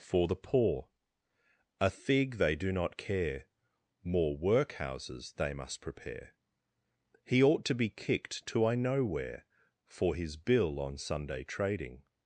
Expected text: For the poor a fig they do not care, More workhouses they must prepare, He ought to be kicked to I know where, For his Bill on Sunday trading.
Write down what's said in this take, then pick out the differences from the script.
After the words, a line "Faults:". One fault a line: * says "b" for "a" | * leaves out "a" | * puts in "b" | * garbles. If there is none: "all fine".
For the poor a fig they do not care, More workhouses they must prepare, He ought to be kicked to I know where, For his Bill on Sunday trading.
Faults:
all fine